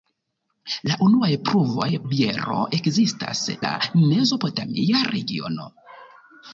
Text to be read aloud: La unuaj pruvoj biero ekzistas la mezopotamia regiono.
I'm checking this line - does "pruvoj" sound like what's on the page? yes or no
yes